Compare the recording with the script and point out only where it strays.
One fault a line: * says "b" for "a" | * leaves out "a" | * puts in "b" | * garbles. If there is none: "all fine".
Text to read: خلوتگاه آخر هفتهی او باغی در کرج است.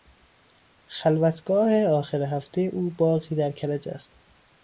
all fine